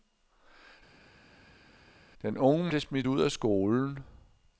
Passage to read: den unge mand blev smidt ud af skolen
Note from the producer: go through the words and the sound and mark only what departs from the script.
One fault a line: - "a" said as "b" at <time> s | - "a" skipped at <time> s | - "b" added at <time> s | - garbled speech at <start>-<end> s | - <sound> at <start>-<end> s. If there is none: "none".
- "mand" skipped at 2.7 s